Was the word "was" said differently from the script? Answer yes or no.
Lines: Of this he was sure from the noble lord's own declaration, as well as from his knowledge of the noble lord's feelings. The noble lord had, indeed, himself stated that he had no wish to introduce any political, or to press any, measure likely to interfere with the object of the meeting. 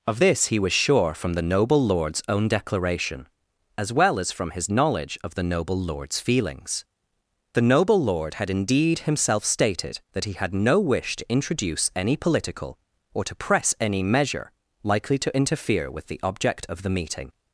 no